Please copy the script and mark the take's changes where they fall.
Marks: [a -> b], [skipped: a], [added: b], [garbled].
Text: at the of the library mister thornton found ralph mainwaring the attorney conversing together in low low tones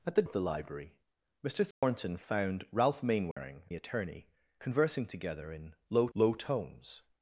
at the of the library mister thornton found ralph mainwaring the attorney conversing together in low low tones